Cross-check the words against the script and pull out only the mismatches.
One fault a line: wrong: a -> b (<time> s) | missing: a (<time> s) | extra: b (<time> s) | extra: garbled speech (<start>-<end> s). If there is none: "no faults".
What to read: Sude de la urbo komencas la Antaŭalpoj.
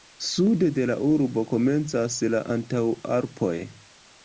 no faults